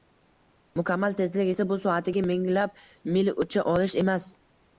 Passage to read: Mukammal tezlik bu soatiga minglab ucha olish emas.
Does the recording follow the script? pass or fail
fail